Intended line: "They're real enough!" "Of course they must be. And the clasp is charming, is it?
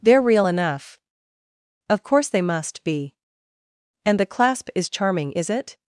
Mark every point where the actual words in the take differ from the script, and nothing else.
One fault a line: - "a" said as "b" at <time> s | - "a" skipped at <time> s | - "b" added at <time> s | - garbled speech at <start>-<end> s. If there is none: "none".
none